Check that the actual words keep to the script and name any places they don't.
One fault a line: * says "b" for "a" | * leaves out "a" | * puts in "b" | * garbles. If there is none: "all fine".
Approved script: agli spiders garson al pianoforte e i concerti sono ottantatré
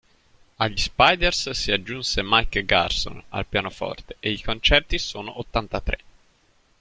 * puts in "si aggiunse mike"